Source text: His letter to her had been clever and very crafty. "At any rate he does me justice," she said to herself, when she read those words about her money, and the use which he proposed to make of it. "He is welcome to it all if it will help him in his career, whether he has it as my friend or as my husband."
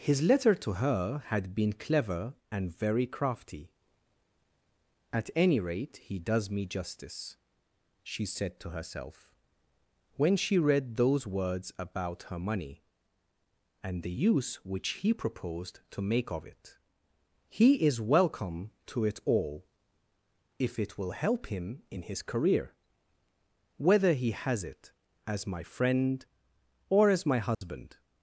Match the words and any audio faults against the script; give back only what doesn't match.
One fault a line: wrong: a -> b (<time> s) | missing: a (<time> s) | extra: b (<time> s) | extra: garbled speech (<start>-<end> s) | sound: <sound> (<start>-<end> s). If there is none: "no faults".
sound: dropout (27.5-27.6 s)